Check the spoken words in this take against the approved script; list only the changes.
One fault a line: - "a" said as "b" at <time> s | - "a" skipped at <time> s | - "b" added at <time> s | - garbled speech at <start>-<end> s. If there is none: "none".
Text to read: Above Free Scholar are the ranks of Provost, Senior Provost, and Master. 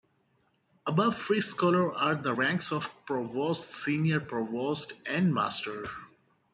none